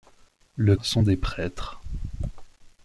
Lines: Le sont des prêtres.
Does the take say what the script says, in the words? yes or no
yes